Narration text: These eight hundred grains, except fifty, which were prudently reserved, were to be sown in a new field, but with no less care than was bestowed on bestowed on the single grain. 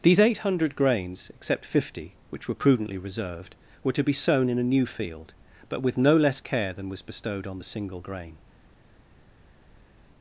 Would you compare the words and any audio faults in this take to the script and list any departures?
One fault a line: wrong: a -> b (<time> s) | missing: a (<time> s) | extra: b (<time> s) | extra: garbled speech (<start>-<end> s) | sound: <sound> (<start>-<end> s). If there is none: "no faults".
missing: bestowed on (7.6 s)